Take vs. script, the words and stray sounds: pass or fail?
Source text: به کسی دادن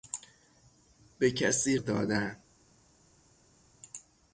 pass